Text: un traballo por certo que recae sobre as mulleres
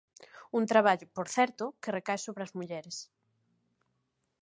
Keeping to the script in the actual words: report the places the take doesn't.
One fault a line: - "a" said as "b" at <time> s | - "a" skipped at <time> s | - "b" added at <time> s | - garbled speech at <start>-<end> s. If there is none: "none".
none